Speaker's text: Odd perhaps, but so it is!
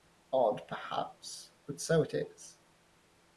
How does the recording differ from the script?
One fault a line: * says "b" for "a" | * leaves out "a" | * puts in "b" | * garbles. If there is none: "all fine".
all fine